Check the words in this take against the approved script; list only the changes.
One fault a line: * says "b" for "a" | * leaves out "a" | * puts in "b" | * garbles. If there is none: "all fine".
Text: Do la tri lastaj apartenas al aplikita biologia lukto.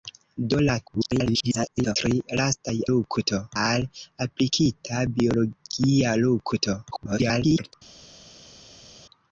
* garbles
* says "lukto" for "apartenas"
* garbles